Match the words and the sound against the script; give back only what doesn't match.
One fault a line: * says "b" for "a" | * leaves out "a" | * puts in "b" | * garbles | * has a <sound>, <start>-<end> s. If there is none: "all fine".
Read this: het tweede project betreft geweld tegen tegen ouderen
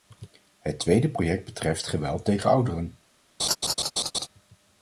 * leaves out "tegen"
* has a laugh, 3.4-4.3 s